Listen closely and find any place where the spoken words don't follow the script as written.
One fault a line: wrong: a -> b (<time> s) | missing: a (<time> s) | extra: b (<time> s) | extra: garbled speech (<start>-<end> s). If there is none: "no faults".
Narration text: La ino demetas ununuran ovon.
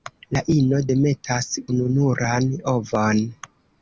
no faults